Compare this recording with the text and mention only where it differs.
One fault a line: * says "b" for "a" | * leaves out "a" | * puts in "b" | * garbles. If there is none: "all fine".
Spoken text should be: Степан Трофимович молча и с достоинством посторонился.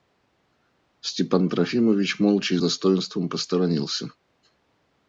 * leaves out "с"